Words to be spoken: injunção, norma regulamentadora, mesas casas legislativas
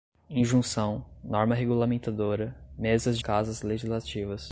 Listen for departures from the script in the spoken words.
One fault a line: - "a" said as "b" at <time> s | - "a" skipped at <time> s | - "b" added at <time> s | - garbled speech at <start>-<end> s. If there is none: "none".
none